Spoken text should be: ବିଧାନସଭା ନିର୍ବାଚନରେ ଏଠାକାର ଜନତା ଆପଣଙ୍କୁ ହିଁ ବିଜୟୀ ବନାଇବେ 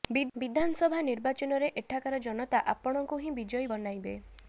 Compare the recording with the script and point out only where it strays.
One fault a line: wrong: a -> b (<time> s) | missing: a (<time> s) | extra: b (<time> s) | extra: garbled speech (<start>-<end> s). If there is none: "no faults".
no faults